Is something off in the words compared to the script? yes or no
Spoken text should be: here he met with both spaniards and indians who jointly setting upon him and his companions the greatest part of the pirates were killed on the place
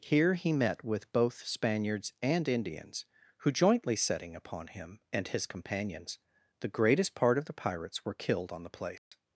no